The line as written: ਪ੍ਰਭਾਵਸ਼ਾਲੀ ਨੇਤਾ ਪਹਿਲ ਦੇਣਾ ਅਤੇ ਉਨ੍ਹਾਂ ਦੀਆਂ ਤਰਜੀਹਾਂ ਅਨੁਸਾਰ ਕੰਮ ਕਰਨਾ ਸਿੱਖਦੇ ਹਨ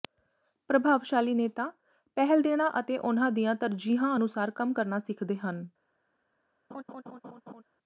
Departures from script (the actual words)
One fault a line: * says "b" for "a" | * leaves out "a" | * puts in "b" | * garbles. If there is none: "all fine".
all fine